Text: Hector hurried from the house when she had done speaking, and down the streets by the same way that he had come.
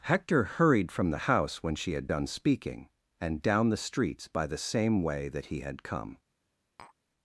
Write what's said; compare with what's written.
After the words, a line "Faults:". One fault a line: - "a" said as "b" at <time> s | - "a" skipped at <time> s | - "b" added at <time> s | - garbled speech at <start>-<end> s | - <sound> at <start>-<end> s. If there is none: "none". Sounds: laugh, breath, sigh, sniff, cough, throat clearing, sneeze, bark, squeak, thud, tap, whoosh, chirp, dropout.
Hector hurried from the house when she had done speaking, and down the streets by the same way that he had come.
Faults:
- tap at 6.8-7.0 s